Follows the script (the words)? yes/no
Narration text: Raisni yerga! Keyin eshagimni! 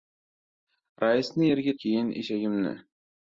yes